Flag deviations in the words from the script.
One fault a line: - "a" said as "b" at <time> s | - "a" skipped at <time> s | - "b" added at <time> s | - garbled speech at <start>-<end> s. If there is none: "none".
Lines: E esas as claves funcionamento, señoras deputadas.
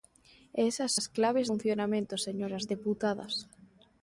none